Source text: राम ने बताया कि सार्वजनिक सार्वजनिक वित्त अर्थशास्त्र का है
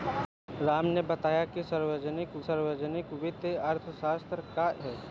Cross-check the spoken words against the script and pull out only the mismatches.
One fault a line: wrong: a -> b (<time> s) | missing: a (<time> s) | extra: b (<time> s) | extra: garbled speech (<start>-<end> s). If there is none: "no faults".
no faults